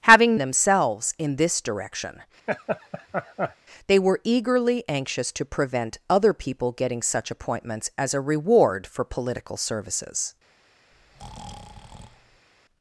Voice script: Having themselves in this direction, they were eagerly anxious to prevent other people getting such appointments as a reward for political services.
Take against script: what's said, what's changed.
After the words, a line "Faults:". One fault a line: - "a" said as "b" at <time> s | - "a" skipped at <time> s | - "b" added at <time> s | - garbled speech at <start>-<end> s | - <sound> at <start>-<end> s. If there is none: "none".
Having themselves in this direction, they were eagerly anxious to prevent other people getting such appointments as a reward for political services.
Faults:
- laugh at 2.5-3.6 s
- breath at 10.9-12.5 s